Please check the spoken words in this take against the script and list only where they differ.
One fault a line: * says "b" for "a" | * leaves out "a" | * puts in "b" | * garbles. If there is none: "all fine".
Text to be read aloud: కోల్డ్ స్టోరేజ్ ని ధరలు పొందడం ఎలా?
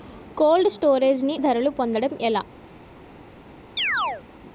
all fine